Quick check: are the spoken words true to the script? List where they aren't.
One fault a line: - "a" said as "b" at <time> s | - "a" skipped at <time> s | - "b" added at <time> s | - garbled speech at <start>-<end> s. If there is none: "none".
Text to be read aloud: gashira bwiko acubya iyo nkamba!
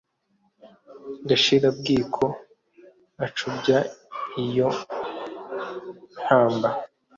none